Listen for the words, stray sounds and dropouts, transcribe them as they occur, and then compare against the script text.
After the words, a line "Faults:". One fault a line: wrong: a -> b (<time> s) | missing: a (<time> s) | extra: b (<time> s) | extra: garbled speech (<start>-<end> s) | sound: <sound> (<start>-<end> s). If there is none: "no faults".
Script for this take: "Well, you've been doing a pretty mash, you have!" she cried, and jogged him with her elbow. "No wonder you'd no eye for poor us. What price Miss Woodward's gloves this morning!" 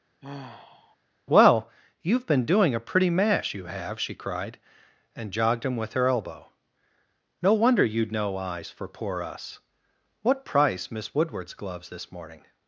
"Well, you've been doing a pretty mash, you have!" she cried, and jogged him with her elbow. "No wonder you'd no eyes for poor us. What price Miss Woodward's gloves this morning!"
Faults:
sound: sigh (0.2-1.0 s)
wrong: eye -> eyes (8.4 s)